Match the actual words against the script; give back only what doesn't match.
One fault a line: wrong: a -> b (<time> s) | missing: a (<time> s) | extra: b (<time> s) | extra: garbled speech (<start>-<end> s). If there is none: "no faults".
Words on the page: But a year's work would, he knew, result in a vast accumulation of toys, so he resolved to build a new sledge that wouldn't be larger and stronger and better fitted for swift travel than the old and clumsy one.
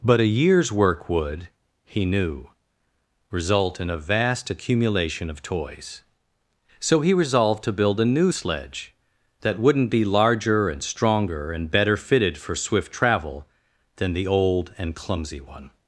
no faults